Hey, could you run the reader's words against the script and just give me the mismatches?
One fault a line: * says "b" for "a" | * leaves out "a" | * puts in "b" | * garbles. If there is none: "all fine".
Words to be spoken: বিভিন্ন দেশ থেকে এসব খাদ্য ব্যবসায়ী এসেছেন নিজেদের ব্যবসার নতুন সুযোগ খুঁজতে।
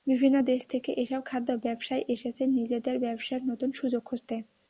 all fine